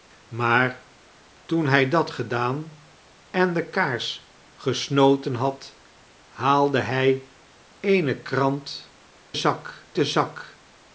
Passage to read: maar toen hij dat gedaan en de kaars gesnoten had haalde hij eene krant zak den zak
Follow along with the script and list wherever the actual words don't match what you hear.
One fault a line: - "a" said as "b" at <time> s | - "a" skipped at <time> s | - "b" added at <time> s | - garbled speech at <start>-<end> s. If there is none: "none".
none